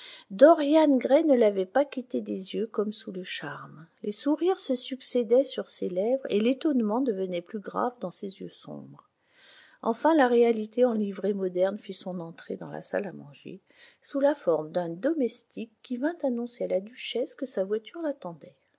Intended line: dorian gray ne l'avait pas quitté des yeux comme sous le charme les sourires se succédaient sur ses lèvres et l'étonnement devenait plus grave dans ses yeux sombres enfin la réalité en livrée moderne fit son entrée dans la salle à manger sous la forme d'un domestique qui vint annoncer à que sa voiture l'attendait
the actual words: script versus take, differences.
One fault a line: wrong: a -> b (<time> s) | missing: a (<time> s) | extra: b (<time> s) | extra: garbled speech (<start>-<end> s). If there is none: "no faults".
extra: la duchesse (16.7 s)